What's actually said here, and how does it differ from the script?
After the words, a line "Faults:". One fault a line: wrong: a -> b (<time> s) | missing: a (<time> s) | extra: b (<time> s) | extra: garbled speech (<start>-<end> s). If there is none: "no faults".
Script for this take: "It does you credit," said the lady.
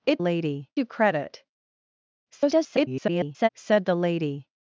"It lady you credit," [garbled] said the lady.
Faults:
wrong: does -> lady (0.2 s)
extra: garbled speech (2.3-3.5 s)